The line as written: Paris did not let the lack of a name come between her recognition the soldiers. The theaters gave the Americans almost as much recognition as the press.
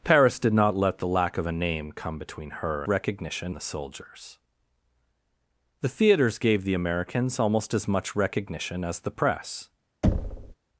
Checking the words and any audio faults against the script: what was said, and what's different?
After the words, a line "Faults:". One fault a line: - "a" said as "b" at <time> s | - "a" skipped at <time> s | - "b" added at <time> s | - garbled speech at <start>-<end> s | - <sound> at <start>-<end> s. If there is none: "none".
Paris did not let the lack of a name come between her recognition the soldiers. The theaters gave the Americans almost as much recognition as the press.
Faults:
- thud at 10.0-10.6 s